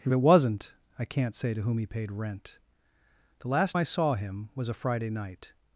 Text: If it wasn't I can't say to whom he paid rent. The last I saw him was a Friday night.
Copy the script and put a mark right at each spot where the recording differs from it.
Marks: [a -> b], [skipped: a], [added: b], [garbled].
If it wasn't I can't say to whom he paid rent. The last I saw him was a Friday night.